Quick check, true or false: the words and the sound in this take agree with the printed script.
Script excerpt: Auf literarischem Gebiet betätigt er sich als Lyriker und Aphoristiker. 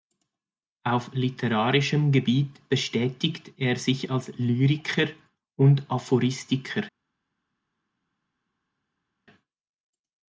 true